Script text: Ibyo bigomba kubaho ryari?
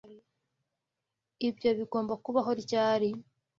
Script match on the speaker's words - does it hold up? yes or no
yes